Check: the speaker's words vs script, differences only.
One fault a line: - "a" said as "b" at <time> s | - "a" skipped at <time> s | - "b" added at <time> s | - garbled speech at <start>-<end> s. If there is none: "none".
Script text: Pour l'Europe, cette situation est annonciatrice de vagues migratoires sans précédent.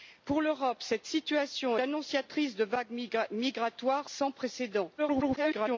- "est" skipped at 1.8 s
- garbled speech at 5.0-5.8 s